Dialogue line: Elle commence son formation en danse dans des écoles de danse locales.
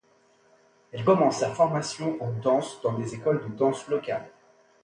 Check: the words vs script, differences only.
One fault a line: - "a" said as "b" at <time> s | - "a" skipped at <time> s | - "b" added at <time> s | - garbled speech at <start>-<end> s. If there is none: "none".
- "son" said as "sa" at 1.4 s